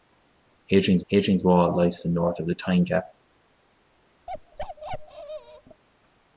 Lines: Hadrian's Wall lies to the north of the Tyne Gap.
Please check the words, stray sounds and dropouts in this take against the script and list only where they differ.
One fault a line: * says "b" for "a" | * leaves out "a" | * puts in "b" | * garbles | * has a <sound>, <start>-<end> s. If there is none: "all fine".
* puts in "hadrian's"
* has a bark, 4.3-5.8 s